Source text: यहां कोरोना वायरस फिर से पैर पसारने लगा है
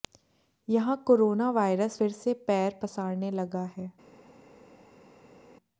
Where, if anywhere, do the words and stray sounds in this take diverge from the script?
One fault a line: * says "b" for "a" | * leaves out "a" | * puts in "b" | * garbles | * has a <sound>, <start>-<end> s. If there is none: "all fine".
all fine